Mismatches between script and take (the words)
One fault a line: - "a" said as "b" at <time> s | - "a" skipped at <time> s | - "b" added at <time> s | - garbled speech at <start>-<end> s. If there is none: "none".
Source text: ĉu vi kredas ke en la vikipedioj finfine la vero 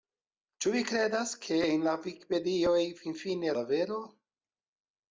none